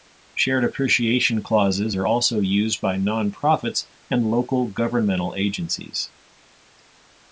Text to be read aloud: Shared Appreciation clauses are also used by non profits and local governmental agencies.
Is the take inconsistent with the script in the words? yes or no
no